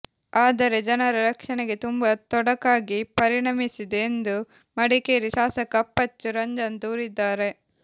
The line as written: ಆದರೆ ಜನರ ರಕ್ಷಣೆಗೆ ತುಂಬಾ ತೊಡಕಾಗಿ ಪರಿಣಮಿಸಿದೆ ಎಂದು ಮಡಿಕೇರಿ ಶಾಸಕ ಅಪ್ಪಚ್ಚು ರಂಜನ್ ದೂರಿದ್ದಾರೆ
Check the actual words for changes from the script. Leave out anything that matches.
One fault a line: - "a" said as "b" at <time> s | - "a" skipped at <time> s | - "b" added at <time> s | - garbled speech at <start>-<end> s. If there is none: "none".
none